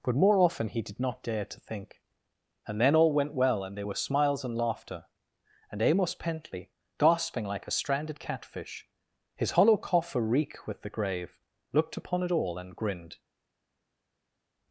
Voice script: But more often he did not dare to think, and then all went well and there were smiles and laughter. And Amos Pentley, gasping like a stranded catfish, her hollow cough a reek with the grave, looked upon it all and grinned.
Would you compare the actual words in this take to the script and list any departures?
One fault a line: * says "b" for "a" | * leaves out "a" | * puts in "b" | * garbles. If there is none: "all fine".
* says "his" for "her"